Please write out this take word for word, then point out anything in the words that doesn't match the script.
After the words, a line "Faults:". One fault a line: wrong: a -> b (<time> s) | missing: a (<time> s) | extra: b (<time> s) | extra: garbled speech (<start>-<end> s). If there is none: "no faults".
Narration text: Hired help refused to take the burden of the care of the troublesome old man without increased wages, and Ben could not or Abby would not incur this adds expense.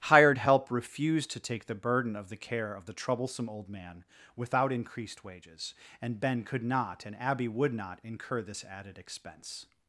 Hired help refused to take the burden of the care of the troublesome old man without increased wages, and Ben could not and Abby would not incur this added expense.
Faults:
wrong: or -> and (7.0 s)
wrong: adds -> added (8.6 s)